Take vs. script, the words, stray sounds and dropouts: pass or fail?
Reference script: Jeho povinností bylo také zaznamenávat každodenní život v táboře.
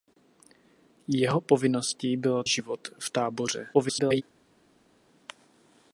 fail